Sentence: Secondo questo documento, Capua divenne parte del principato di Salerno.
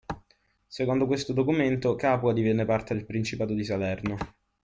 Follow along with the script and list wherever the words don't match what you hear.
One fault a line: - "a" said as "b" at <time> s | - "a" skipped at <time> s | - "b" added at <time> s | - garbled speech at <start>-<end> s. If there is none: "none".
none